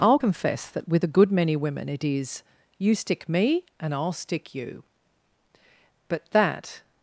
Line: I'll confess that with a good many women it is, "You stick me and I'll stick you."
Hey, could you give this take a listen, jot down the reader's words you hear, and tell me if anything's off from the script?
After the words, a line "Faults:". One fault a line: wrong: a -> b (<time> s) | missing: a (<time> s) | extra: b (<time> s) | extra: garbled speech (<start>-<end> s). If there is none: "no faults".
I'll confess that with a good many women it is, "You stick me and I'll stick you." But that
Faults:
extra: But that (6.1 s)